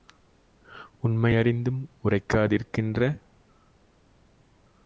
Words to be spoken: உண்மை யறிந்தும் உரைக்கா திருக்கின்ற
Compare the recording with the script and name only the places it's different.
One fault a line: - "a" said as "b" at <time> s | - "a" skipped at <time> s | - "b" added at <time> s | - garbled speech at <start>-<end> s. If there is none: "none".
none